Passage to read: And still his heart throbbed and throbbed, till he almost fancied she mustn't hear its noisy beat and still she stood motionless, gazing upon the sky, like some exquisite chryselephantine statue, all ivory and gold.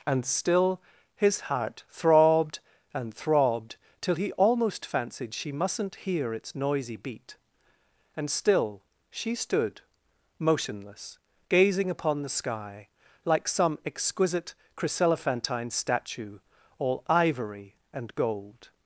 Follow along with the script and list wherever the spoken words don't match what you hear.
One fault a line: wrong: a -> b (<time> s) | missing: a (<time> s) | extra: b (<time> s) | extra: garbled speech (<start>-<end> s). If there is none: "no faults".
no faults